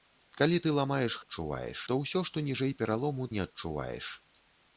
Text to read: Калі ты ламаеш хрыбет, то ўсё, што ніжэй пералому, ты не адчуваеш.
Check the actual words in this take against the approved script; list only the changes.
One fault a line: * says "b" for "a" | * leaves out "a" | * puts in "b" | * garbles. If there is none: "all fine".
* says "адчуваеш" for "хрыбет"
* leaves out "ты"